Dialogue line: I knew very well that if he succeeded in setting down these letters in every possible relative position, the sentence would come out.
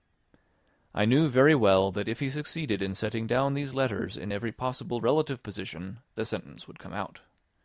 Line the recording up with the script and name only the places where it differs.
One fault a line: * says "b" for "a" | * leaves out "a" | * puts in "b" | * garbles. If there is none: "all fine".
all fine